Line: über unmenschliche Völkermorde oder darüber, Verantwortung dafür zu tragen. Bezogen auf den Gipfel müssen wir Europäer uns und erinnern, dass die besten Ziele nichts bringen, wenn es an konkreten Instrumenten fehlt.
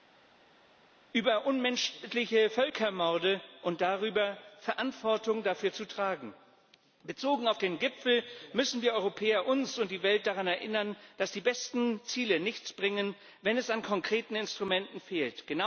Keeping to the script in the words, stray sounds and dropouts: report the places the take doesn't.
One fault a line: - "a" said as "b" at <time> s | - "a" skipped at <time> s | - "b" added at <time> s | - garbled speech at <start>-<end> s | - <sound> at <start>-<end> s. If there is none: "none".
- "oder" said as "und" at 3.6 s
- "die Welt daran" added at 9.9 s